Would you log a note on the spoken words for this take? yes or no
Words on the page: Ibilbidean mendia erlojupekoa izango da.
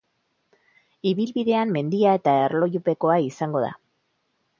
yes